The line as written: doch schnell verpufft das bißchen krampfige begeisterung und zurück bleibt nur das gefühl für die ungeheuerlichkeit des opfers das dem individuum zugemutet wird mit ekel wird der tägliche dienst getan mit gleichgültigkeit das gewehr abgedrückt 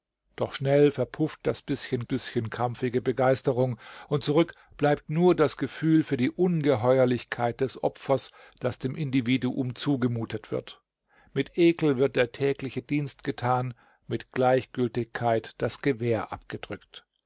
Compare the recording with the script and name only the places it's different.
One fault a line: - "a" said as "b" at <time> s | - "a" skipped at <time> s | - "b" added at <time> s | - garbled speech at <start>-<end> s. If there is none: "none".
- "bißchen" added at 2.0 s